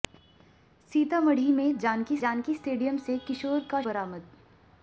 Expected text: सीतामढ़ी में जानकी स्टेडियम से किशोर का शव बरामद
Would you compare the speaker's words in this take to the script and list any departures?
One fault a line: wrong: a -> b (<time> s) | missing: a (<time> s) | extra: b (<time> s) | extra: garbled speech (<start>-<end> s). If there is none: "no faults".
extra: जानकी (2.2 s)
missing: शव (3.8 s)